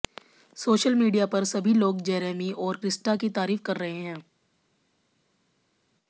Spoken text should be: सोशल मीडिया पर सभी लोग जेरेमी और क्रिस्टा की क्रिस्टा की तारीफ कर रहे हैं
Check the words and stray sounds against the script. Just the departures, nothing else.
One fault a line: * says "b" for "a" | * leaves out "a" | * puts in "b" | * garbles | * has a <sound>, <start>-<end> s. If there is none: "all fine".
* leaves out "क्रिस्टा की"